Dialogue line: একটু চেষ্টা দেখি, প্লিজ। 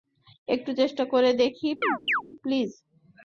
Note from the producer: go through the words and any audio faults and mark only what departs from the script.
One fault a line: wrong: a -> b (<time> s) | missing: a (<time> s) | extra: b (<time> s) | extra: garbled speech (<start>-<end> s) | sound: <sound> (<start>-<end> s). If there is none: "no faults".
extra: করে (1.1 s)
sound: chirp (1.8-2.2 s)